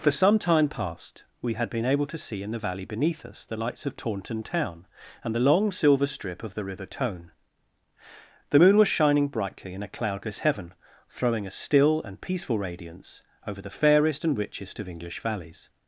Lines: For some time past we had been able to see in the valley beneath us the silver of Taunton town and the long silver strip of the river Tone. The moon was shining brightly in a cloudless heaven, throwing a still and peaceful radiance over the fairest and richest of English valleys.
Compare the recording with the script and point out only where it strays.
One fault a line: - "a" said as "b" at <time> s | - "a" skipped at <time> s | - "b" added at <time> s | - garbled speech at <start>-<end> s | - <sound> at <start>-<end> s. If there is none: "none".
- "silver" said as "lights" at 3.5 s